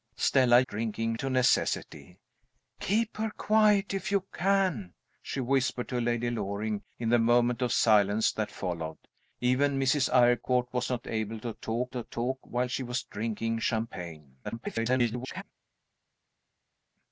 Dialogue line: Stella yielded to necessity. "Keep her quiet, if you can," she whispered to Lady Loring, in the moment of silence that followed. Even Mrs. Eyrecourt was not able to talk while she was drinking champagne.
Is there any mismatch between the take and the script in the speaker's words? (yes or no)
yes